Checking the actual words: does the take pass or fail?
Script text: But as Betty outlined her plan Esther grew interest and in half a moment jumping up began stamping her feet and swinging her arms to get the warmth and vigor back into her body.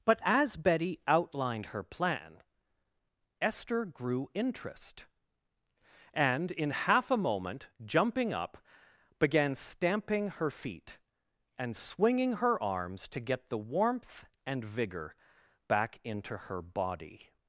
pass